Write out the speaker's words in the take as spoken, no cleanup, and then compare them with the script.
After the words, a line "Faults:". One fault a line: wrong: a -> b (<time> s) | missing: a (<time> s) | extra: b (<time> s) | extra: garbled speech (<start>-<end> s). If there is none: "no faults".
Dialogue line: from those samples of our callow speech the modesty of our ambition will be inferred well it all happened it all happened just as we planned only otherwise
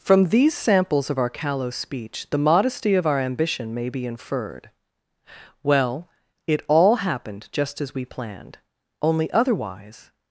from these samples of our callow speech the modesty of our ambition may be inferred well it all happened just as we planned only otherwise
Faults:
wrong: those -> these (0.3 s)
wrong: will -> may (3.7 s)
missing: it all happened (7.5 s)